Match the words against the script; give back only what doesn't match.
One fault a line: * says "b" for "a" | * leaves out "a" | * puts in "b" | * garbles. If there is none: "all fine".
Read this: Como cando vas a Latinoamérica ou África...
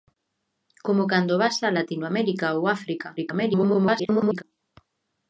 * garbles